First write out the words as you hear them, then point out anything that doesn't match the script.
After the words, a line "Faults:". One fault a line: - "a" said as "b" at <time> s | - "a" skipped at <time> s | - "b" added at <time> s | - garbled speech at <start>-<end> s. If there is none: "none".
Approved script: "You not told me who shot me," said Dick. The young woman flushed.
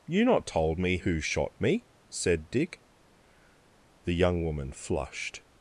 "You not told me who shot me," said Dick. The young woman flushed.
Faults:
none